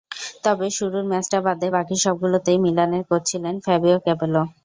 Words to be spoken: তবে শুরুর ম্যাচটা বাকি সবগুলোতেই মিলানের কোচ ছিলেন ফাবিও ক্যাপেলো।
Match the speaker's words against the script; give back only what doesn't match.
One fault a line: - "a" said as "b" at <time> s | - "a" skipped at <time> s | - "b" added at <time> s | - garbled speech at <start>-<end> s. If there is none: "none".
- "বাদে" added at 1.4 s